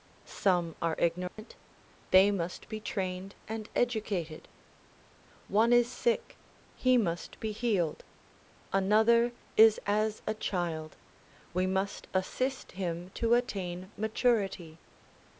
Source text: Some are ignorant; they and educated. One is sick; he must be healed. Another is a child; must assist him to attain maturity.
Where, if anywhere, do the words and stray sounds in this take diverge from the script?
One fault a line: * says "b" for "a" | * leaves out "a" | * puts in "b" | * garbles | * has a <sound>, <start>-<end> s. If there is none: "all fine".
* has a dropout, 1.3-1.4 s
* puts in "must be trained"
* puts in "as"
* puts in "we"